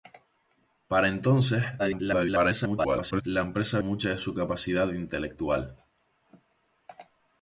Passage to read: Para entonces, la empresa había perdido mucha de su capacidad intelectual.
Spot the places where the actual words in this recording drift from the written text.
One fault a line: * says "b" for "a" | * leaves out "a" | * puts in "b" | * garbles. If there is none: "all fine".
* garbles
* leaves out "había perdido"